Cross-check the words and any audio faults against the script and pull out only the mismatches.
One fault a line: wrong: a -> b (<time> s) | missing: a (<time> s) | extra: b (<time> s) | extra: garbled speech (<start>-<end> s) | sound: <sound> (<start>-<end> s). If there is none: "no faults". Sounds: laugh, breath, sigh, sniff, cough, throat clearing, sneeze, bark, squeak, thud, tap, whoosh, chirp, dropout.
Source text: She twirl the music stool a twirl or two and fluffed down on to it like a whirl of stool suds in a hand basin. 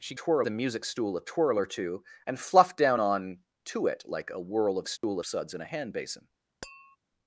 sound: dropout (5.0-5.0 s)
sound: tap (6.6-7.0 s)